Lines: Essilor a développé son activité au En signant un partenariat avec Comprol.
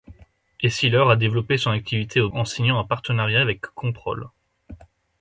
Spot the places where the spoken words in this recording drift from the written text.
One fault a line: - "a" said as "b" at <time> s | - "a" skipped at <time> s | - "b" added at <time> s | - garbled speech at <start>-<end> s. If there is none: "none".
none